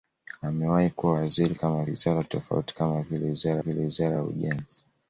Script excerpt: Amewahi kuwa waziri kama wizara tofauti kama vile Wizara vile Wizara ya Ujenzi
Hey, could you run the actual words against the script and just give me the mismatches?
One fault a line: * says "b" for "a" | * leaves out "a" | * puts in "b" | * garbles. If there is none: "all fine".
all fine